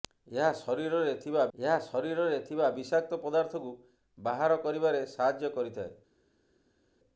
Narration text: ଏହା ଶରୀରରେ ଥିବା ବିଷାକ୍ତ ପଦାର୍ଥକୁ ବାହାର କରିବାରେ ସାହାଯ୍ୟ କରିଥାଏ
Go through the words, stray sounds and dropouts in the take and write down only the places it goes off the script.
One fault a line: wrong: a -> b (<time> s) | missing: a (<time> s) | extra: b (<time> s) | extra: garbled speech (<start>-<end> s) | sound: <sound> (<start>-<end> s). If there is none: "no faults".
extra: ଏହା ଶରୀରରେ ଥିବା (1.6 s)